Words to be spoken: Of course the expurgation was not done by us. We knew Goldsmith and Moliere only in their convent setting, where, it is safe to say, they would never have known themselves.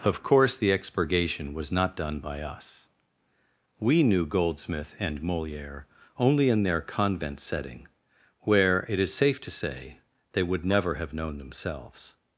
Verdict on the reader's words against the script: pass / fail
pass